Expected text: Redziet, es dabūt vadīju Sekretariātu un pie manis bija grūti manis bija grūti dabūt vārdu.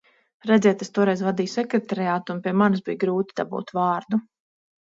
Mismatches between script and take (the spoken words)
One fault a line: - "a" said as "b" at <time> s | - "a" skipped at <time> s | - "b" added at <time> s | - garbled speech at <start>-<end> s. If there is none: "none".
- "dabūt" said as "toreiz" at 0.9 s
- "manis bija grūti" skipped at 3.4 s